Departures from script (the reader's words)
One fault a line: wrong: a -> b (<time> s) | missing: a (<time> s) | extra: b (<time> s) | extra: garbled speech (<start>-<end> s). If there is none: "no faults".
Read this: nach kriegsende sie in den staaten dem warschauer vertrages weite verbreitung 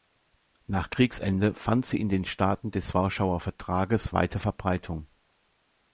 extra: fand (1.5 s)
wrong: dem -> des (2.7 s)